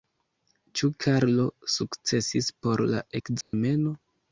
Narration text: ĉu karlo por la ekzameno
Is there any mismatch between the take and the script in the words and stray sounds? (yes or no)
yes